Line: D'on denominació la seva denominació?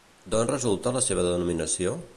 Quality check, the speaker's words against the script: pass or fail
fail